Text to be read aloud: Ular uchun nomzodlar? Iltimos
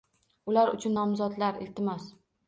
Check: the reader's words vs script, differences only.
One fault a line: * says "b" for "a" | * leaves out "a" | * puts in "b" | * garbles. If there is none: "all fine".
all fine